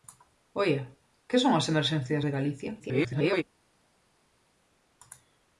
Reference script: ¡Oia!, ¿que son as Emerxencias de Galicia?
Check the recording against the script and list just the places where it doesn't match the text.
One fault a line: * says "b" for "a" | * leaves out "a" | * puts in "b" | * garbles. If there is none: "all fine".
* garbles